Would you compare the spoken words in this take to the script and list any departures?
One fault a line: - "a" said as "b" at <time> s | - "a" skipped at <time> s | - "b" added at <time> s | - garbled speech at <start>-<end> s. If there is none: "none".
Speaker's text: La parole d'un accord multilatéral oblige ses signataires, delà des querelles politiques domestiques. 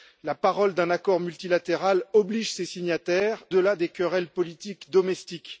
none